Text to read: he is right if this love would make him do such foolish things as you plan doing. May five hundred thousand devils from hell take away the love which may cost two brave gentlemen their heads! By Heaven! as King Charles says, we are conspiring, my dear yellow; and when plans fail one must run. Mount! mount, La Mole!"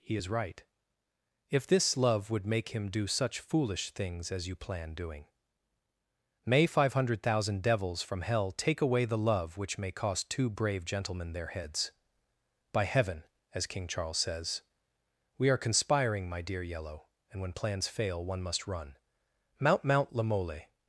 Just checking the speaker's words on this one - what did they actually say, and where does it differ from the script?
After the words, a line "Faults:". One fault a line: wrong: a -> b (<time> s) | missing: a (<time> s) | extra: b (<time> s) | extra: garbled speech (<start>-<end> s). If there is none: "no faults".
he is right if this love would make him do such foolish things as you plan doing. May five hundred thousand devils from hell take away the love which may cost two brave gentlemen their heads! By Heaven! as King Charles says, we are conspiring, my dear yellow; and when plans fail one must run. Mount! mount, La Mole!"
Faults:
no faults